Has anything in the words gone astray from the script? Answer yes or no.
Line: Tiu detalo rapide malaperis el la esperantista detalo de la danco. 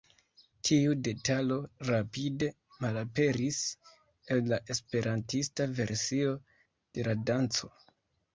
yes